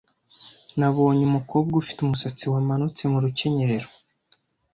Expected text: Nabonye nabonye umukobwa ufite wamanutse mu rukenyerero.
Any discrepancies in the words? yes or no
yes